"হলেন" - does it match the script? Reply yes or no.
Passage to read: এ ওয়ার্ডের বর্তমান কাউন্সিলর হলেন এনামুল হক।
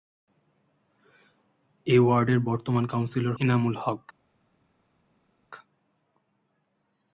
no